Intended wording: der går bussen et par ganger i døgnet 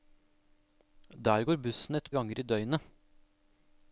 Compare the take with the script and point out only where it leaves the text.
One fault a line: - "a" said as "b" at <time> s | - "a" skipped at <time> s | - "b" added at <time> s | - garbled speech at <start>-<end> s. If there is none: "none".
- "par" skipped at 2.1 s